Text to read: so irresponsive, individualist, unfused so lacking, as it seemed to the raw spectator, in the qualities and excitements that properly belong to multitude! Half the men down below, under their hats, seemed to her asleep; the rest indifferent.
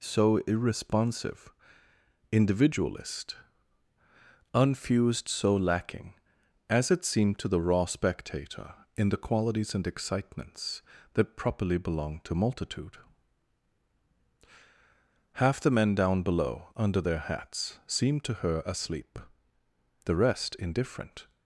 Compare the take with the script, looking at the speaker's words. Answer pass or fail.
pass